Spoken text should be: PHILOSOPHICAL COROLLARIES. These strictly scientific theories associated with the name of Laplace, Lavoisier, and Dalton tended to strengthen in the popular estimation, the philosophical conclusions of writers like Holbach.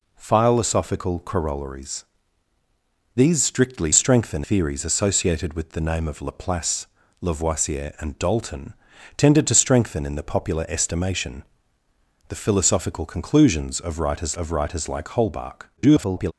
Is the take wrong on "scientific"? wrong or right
wrong